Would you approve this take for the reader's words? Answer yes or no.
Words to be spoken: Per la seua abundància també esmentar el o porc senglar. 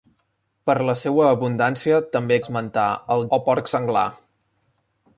yes